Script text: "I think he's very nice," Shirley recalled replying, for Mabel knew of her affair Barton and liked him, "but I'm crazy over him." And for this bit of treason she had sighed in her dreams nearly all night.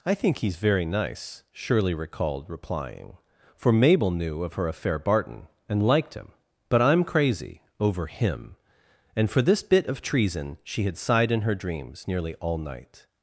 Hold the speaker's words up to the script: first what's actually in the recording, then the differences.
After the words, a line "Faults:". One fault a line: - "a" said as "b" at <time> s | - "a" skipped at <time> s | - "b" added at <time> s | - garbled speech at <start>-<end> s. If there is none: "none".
"I think he's very nice," Shirley recalled replying, for Mabel knew of her affair Barton and liked him, "but I'm crazy over him." And for this bit of treason she had sighed in her dreams nearly all night.
Faults:
none